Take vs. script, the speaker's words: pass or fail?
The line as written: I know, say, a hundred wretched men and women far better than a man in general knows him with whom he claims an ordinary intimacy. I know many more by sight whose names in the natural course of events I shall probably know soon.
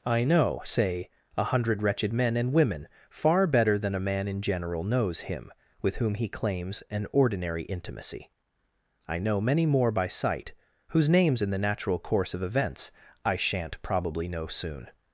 fail